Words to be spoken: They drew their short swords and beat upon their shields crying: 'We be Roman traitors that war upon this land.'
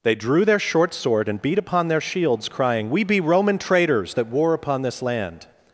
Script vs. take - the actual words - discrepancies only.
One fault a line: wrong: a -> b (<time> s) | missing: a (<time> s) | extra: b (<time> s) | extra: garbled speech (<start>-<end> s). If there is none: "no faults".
wrong: swords -> sword (0.9 s)